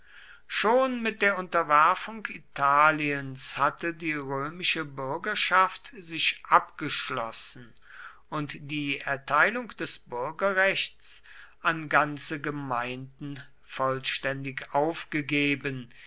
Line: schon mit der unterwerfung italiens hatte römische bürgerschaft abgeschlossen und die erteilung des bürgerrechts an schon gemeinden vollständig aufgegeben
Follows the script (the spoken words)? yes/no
no